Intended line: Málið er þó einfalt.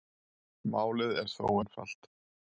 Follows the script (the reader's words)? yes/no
yes